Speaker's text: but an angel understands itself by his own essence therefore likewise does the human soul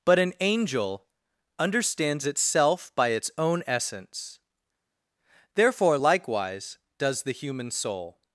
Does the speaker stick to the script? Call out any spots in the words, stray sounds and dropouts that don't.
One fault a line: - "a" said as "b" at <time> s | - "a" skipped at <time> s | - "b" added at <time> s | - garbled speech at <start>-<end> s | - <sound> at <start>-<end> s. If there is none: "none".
- "his" said as "its" at 3.1 s